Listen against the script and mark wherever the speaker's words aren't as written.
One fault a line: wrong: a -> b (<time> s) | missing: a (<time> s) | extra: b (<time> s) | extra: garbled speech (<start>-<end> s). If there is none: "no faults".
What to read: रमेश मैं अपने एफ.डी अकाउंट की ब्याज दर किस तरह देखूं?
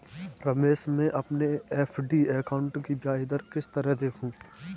no faults